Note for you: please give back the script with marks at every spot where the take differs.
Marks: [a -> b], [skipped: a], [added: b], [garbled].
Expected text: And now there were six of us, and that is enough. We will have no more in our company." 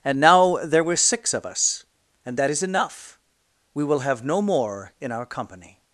And now there were six of us, and that is enough. We will have no more in our company."